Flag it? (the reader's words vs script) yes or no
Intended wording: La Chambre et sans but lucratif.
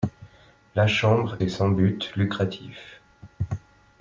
no